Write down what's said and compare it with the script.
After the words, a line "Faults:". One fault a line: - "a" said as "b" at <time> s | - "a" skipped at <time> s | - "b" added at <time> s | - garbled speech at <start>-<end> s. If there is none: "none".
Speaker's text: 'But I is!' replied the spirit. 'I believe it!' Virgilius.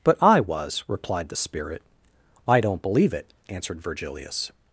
'But I was!' replied the spirit. 'I don't believe it!' answered Virgilius.
Faults:
- "is" said as "was" at 0.4 s
- "don't" added at 2.6 s
- "answered" added at 3.5 s